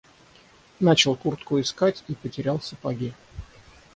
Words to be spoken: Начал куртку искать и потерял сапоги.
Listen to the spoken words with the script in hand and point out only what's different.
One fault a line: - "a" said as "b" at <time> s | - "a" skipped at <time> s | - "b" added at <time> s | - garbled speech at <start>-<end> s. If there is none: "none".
none